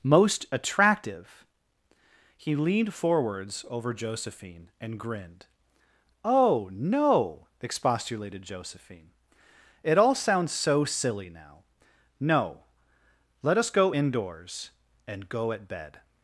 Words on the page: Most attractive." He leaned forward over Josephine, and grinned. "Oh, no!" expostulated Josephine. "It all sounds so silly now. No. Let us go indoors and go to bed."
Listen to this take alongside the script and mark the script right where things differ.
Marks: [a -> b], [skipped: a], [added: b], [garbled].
Most attractive." He leaned [forward -> forwards] over Josephine, and grinned. "Oh, no!" expostulated Josephine. "It all sounds so silly now. No. Let us go indoors and go [to -> at] bed."